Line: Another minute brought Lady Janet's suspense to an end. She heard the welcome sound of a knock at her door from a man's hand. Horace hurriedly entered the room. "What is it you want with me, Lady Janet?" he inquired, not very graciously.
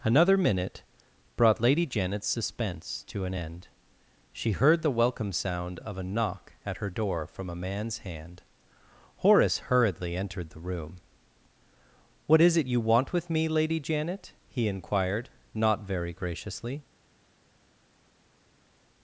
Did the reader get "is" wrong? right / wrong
right